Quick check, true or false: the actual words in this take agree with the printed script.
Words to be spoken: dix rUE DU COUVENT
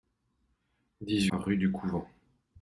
true